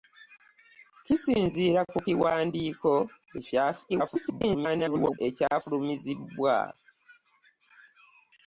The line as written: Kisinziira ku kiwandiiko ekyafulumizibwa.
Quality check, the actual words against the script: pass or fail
fail